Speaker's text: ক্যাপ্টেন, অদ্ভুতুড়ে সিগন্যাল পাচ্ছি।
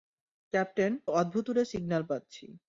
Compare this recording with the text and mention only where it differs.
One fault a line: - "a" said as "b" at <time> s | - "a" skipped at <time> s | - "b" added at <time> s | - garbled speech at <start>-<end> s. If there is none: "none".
none